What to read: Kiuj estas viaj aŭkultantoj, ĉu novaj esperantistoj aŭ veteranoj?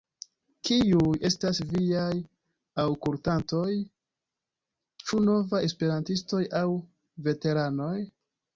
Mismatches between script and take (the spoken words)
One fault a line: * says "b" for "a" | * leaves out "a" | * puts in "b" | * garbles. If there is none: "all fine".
all fine